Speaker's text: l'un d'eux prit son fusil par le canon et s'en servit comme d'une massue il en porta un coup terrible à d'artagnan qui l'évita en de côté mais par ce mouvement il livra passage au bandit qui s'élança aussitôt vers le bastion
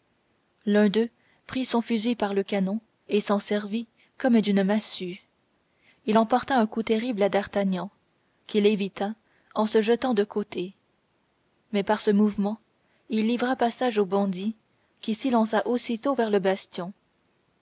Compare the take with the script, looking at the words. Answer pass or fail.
fail